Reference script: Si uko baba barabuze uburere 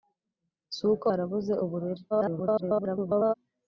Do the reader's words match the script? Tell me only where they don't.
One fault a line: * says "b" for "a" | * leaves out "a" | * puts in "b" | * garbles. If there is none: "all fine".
* leaves out "baba"
* garbles